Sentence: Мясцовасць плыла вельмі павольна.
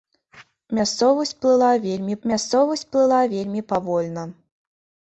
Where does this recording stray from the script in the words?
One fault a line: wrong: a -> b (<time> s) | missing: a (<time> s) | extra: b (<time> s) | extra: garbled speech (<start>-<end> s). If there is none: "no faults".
extra: мясцовасць плыла вельмі (2.3 s)